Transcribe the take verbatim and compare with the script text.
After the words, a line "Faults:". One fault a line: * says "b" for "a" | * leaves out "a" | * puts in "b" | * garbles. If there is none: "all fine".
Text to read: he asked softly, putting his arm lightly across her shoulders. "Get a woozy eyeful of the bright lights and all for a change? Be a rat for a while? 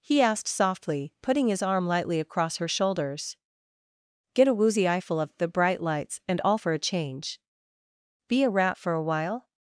he asked softly, putting his arm lightly across her shoulders. "Get a woozy eyeful of the bright lights and all for a change? Be a rat for a while?
Faults:
all fine